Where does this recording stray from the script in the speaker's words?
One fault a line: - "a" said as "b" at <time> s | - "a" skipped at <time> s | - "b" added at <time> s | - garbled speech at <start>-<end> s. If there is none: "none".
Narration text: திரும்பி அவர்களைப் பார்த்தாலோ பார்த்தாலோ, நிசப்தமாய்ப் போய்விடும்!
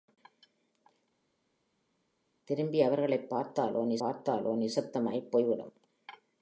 none